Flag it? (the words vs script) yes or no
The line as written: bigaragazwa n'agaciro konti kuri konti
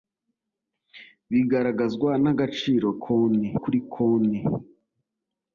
no